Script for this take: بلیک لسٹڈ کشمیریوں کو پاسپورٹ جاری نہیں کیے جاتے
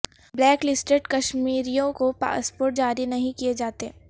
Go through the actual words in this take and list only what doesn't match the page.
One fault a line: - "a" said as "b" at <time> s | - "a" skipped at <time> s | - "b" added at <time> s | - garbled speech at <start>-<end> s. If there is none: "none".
none